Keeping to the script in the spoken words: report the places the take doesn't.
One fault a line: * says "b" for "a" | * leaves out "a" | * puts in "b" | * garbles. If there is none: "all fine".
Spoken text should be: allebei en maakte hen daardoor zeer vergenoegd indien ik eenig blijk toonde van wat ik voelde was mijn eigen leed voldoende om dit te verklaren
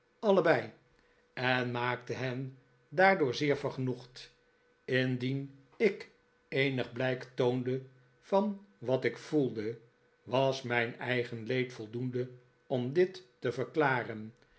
all fine